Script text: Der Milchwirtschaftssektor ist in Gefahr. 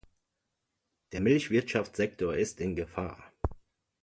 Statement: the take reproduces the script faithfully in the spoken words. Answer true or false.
true